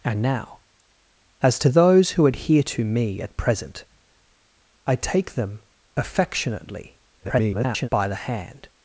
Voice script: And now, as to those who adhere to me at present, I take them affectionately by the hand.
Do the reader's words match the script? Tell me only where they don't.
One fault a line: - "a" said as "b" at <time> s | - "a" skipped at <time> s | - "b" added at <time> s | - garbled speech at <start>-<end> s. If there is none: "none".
- garbled speech at 7.2-7.9 s